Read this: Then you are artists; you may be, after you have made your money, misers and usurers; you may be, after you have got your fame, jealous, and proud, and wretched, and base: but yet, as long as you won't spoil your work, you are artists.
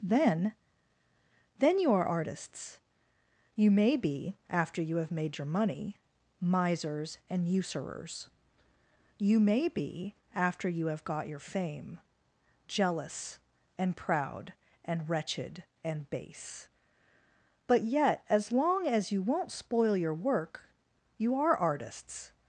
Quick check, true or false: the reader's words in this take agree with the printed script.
false